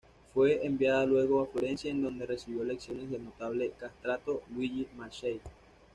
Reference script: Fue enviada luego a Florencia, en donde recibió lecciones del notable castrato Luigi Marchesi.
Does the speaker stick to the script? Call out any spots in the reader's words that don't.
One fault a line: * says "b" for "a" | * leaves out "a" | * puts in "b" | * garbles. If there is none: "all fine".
all fine